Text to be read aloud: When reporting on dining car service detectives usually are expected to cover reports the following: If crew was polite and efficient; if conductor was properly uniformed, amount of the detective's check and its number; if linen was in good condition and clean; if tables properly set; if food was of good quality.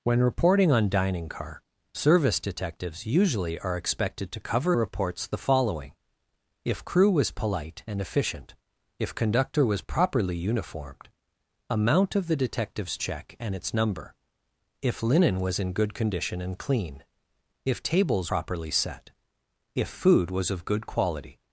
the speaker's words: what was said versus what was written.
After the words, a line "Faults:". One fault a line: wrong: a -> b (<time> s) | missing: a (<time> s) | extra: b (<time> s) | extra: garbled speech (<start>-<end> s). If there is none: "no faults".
When reporting on dining car service detectives usually are expected to cover reports the following: If crew was polite and efficient; if conductor was properly uniformed, amount of the detective's check and its number; if linen was in good condition and clean; if tables properly set; if food was of good quality.
Faults:
no faults